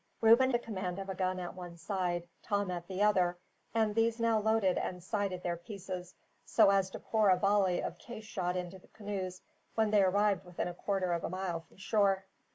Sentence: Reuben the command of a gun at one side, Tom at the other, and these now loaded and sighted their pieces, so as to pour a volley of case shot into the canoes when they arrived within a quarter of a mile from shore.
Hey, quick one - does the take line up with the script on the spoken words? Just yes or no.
yes